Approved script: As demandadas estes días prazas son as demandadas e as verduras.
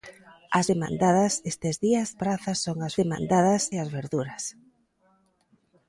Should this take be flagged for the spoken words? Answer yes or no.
no